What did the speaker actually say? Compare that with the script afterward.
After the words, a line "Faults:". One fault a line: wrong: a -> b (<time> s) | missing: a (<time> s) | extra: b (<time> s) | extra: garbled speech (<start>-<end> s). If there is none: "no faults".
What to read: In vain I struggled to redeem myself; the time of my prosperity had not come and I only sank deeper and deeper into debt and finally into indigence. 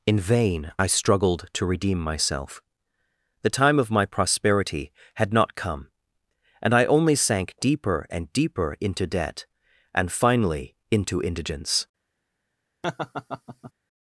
In vain I struggled to redeem myself; the time of my prosperity had not come and I only sank deeper and deeper into debt and finally into indigence.
Faults:
no faults